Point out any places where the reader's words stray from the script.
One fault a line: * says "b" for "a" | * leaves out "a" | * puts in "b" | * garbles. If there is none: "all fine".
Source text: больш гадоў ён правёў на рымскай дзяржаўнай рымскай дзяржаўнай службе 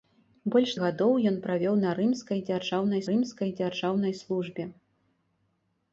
all fine